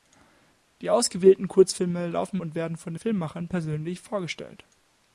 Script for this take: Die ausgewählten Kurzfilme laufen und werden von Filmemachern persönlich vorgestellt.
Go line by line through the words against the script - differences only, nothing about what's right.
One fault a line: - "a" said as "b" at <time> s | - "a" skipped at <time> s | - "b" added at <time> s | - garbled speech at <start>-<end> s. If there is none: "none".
none